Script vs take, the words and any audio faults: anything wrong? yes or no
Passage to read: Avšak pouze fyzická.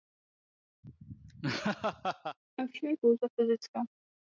yes